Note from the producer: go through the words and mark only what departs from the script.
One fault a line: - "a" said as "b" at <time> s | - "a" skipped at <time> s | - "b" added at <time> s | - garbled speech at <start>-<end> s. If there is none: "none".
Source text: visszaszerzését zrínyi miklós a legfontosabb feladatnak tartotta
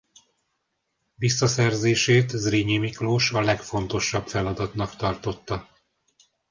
none